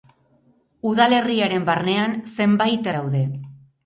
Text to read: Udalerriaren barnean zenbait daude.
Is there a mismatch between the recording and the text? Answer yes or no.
no